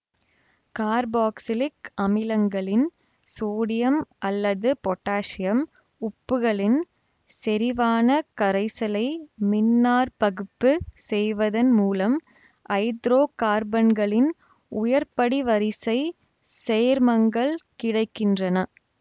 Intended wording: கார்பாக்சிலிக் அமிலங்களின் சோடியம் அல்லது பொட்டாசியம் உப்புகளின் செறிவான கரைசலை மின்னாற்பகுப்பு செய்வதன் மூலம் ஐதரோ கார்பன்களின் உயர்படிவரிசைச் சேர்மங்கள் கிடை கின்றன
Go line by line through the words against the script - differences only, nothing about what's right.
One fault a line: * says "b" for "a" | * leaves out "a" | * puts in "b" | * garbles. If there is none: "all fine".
all fine